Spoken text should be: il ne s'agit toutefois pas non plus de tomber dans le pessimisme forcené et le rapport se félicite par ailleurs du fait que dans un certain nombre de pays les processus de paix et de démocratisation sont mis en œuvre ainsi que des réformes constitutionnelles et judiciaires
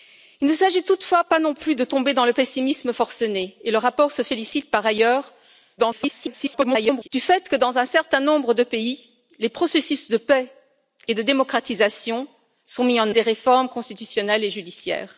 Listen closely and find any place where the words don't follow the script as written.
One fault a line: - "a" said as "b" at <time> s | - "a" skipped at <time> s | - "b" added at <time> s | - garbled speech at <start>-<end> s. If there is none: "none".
- garbled speech at 5.8-7.1 s
- "œuvre ainsi" skipped at 13.1 s